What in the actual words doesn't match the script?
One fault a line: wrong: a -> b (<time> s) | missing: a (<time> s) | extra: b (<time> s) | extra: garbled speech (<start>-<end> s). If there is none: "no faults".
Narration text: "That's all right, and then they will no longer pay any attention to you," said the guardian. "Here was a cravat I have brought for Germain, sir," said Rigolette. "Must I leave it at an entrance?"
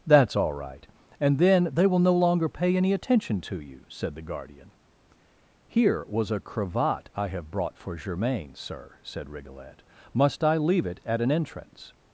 no faults